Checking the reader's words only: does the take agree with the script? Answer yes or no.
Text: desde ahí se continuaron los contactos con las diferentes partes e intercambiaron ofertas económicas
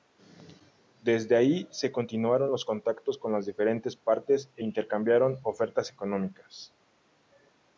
yes